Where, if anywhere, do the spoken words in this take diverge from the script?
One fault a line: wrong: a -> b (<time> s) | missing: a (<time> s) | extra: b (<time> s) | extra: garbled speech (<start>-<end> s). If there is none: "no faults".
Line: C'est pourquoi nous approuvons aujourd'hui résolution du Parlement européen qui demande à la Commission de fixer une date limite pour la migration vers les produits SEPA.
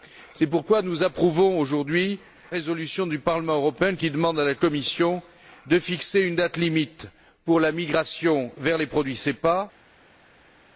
no faults